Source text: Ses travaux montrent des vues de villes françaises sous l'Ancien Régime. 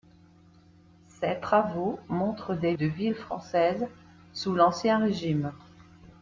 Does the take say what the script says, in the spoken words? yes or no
no